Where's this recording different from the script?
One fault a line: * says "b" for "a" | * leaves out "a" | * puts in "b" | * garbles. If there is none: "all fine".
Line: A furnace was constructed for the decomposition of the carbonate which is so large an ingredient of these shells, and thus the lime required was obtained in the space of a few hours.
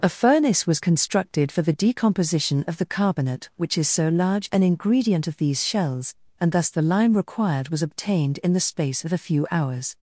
all fine